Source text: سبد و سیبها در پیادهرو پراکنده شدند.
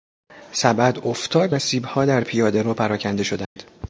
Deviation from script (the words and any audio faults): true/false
true